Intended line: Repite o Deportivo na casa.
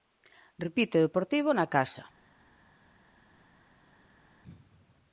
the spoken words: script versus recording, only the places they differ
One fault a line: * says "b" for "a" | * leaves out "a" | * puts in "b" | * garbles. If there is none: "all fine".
all fine